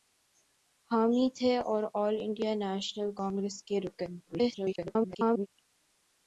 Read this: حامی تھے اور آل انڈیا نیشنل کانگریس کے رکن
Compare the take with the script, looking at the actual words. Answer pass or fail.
fail